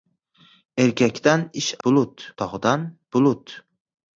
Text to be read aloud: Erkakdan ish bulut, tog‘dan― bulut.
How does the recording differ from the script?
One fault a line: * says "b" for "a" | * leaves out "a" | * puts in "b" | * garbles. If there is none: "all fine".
all fine